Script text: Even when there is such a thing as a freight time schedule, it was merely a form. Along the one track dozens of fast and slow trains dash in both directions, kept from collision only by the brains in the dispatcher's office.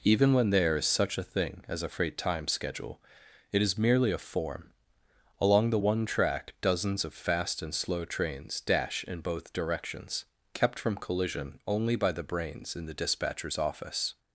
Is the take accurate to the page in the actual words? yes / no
no